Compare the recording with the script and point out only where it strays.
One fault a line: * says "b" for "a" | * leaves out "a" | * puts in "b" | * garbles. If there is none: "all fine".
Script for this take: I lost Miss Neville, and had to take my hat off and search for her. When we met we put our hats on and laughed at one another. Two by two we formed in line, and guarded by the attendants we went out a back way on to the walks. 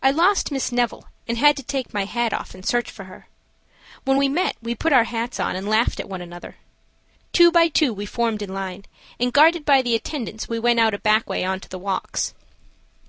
all fine